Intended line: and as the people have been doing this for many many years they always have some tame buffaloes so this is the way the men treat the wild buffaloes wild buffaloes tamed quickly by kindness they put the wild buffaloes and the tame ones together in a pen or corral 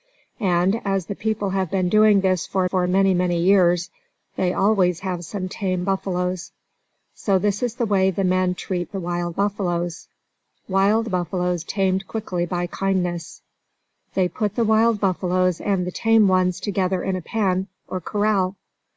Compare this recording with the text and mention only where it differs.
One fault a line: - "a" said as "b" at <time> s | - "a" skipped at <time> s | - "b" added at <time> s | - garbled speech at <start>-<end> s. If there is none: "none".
- "for" added at 2.7 s